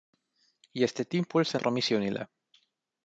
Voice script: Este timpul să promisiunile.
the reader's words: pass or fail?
pass